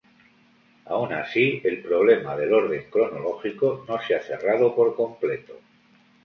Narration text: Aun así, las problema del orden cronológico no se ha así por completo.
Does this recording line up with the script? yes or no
no